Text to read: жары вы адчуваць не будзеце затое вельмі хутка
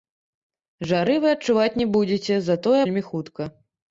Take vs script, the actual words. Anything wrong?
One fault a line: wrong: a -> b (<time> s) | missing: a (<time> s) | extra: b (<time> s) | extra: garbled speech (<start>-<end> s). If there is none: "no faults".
no faults